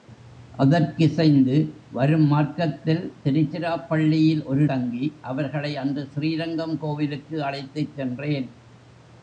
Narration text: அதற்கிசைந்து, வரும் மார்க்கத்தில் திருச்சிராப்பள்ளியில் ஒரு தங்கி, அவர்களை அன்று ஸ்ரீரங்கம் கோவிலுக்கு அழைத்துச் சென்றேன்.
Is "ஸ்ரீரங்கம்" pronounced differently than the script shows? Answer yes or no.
no